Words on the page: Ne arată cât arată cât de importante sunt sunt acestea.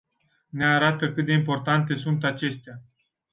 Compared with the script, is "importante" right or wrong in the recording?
right